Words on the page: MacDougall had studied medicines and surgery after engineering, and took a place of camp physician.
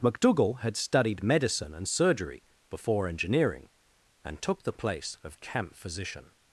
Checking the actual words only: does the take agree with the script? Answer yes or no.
no